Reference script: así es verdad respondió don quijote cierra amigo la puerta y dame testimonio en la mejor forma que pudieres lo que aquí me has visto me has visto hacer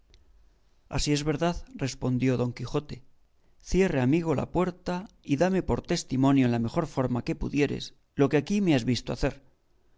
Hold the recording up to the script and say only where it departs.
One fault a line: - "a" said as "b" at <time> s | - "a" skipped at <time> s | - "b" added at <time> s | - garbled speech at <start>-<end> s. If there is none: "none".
- "por" added at 5.6 s
- "me has visto" skipped at 9.1 s